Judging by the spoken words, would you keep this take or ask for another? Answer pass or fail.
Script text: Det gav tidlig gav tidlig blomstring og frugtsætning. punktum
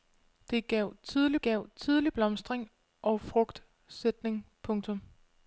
pass